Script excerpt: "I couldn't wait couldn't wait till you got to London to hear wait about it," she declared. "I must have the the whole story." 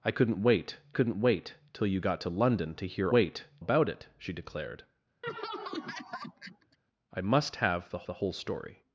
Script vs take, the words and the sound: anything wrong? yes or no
yes